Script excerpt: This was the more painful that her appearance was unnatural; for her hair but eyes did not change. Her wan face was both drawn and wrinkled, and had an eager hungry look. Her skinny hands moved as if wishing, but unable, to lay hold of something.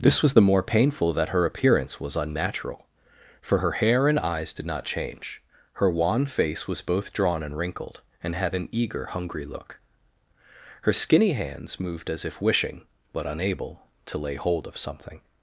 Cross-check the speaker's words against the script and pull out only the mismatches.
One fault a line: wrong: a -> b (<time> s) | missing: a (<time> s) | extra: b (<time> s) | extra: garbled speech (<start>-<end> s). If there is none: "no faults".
wrong: but -> and (4.1 s)